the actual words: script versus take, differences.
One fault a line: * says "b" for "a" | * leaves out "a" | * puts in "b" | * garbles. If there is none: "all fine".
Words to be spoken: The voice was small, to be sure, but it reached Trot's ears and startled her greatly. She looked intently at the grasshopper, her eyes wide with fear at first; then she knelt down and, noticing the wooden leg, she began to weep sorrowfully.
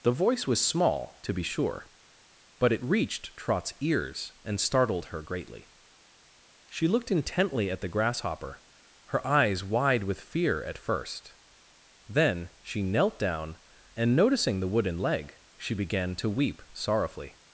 all fine